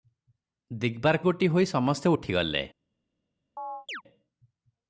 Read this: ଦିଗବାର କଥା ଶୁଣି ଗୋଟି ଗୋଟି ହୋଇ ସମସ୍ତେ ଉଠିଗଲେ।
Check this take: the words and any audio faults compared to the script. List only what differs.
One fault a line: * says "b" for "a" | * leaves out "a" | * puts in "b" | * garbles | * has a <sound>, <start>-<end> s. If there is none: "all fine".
* leaves out "କଥା ଶୁଣି ଗୋଟି"
* has a chirp, 3.6-4.0 s